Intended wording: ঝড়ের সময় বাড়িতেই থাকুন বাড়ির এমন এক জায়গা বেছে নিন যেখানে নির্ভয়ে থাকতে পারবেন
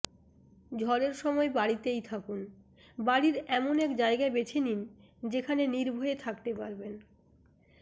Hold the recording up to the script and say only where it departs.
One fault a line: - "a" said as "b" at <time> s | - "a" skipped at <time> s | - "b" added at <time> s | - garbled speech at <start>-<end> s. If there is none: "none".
none